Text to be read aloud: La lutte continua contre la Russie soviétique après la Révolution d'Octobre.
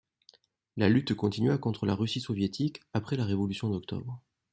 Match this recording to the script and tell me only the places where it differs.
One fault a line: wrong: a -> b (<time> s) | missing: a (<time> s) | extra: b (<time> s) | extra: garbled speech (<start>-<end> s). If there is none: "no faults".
no faults